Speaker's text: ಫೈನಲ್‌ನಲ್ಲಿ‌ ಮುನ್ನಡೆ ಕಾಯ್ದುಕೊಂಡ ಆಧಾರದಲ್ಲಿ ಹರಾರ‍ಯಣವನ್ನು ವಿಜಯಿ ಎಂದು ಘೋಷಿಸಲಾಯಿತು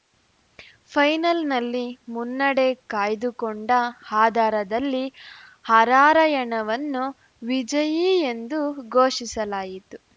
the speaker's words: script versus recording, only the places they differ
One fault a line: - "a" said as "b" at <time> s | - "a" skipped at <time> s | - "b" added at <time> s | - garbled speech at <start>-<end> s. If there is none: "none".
none